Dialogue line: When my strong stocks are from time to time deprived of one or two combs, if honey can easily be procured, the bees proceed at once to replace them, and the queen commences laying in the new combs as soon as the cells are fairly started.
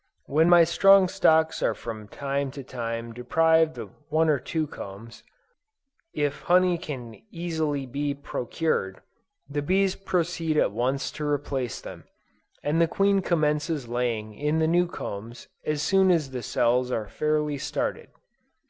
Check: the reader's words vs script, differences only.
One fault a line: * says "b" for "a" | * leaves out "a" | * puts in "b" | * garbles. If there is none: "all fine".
all fine